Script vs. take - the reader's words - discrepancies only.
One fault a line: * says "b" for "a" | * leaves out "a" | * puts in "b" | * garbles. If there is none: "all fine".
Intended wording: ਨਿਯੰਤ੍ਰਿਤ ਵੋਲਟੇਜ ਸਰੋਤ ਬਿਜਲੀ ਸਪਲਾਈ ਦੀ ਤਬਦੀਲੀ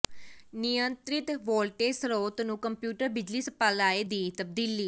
* puts in "ਨੂੰ ਕੰਪਿਊਟਰ"